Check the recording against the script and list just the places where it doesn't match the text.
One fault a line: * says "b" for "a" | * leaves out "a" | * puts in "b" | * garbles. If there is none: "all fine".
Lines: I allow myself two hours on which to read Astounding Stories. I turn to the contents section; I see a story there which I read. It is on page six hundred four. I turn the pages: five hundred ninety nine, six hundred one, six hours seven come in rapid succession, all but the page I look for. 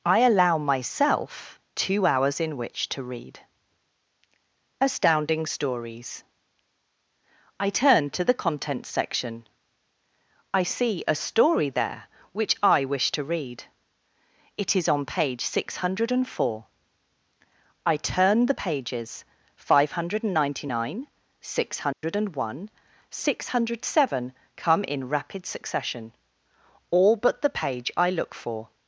* says "in" for "on"
* puts in "wish to"
* says "hundred" for "hours"